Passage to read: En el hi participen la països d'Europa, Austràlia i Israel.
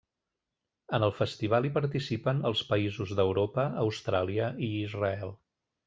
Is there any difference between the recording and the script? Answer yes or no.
yes